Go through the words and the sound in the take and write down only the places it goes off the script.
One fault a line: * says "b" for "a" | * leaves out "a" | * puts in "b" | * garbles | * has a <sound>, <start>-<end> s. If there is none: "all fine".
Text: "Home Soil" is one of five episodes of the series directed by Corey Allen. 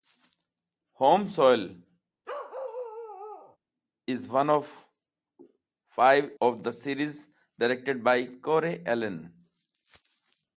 * has a bark, 2.2-3.6 s
* leaves out "episodes"